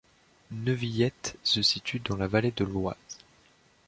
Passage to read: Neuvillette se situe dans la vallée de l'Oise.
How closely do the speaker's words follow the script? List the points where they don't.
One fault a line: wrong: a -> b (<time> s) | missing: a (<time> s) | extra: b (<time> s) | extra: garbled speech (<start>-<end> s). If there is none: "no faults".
no faults